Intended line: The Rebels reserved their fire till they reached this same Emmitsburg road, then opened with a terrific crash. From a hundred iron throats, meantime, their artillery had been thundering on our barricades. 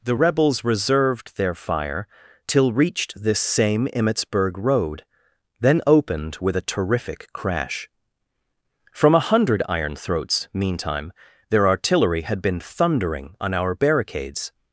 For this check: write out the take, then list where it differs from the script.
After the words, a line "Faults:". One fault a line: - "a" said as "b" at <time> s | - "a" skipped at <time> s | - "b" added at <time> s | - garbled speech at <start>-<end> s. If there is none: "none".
The Rebels reserved their fire till reached this same Emmitsburg road, then opened with a terrific crash. From a hundred iron throats, meantime, their artillery had been thundering on our barricades.
Faults:
- "they" skipped at 2.7 s